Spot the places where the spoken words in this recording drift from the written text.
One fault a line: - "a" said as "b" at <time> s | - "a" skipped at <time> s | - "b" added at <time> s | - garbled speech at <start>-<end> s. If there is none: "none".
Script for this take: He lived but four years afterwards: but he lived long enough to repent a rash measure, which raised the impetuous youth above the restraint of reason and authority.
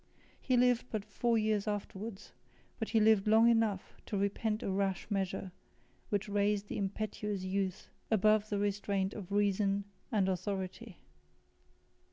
none